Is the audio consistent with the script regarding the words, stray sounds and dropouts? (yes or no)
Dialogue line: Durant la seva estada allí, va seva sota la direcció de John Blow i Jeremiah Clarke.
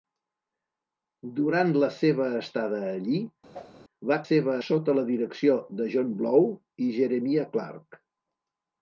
no